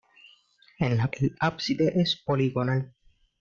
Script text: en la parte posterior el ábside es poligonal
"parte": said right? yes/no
no